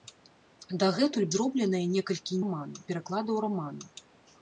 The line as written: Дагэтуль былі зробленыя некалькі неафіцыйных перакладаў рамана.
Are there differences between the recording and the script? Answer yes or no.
yes